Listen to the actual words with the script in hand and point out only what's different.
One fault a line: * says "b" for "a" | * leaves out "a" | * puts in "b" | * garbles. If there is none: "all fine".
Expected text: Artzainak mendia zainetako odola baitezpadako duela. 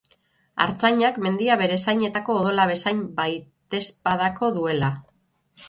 * puts in "bere"
* puts in "bezain"